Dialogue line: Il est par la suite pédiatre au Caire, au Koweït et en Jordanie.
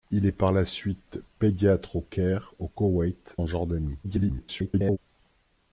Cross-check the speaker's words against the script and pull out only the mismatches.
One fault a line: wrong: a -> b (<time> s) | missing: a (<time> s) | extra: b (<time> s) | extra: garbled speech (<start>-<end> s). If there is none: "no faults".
missing: et (3.4 s)
extra: garbled speech (4.0-5.0 s)